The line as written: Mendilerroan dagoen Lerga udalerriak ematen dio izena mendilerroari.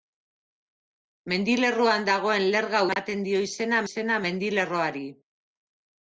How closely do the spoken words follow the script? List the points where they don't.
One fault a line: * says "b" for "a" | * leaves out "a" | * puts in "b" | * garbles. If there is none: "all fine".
* leaves out "udalerriak"
* puts in "izena"